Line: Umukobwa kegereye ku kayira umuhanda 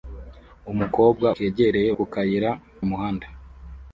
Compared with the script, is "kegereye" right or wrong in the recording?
right